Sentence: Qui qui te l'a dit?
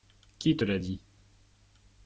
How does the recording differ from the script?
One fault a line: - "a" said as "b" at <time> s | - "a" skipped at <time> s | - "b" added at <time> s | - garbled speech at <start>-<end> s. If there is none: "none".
- "qui" skipped at 0.6 s